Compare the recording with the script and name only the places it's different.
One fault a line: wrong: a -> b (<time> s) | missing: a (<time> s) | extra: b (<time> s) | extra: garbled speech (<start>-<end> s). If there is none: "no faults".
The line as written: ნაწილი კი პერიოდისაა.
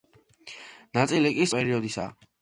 no faults